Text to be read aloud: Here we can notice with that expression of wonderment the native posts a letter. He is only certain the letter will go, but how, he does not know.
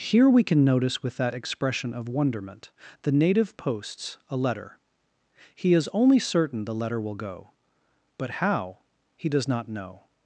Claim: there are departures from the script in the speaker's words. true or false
false